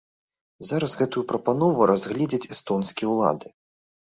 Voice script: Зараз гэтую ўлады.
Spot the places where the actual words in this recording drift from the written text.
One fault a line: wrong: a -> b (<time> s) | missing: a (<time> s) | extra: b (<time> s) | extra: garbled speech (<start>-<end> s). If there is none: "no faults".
extra: прапанову разгледзяць эстонскія (1.3 s)